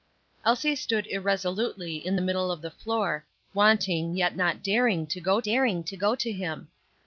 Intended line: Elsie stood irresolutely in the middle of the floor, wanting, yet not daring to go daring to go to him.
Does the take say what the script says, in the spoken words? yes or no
yes